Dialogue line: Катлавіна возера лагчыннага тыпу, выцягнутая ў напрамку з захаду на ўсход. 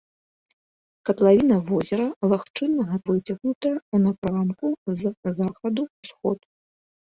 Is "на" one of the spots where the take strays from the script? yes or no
yes